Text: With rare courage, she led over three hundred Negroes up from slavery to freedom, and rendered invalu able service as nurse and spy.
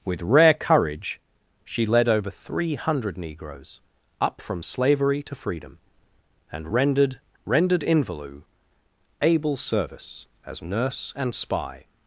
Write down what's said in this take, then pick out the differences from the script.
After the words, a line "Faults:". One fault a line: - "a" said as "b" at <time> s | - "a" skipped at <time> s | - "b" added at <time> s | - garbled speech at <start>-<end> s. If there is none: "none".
With rare courage, she led over three hundred Negroes up from slavery to freedom, and rendered rendered invalu able service as nurse and spy.
Faults:
- "rendered" added at 7.5 s